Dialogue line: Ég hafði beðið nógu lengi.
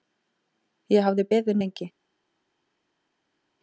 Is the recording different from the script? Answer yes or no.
yes